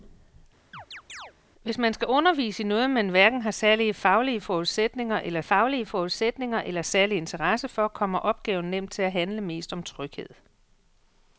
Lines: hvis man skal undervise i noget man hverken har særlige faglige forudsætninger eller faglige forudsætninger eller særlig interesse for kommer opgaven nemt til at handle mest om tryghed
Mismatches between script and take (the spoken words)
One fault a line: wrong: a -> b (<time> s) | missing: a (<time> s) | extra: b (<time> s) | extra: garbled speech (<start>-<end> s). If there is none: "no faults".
no faults